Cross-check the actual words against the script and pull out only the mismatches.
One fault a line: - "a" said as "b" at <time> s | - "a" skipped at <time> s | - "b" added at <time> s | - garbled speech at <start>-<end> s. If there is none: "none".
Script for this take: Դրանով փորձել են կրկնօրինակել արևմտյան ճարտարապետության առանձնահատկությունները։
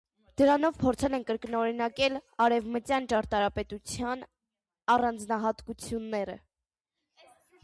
none